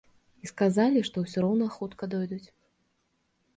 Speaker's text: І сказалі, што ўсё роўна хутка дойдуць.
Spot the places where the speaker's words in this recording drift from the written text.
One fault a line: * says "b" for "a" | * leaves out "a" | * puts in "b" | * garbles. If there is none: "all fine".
all fine